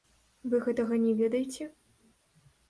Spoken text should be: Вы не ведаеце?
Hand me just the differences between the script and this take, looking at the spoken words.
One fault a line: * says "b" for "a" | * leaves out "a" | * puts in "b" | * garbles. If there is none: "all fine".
* puts in "гэтага"